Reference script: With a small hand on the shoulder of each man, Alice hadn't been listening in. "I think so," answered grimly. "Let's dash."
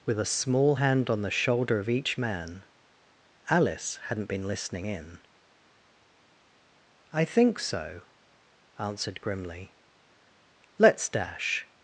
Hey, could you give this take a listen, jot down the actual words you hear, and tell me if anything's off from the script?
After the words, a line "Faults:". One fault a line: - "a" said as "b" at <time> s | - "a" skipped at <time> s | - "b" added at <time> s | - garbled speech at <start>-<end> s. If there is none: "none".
With a small hand on the shoulder of each man, Alice hadn't been listening in. "I think so," answered grimly. "Let's dash."
Faults:
none